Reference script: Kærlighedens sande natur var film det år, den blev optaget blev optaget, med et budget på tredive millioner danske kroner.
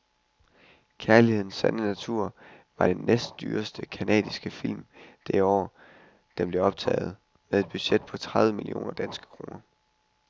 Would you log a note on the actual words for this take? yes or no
yes